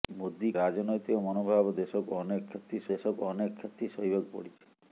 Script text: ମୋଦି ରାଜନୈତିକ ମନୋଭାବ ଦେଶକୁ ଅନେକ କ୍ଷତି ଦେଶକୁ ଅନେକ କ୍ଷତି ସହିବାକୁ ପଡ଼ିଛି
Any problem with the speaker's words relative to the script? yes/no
no